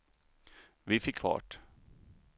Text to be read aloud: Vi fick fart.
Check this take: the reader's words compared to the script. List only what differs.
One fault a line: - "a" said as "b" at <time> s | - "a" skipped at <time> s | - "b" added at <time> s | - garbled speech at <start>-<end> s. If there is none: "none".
none